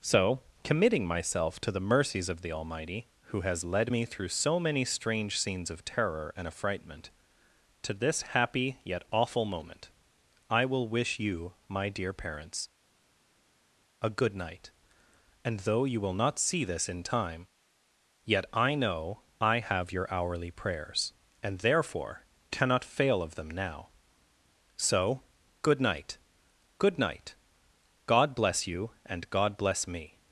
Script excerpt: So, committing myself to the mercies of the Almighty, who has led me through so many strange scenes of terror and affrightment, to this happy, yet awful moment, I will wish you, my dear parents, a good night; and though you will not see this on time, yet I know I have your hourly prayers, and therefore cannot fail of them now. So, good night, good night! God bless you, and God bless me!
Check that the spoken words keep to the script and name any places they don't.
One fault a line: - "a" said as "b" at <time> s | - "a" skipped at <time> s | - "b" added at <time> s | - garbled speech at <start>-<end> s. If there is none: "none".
- "on" said as "in" at 16.9 s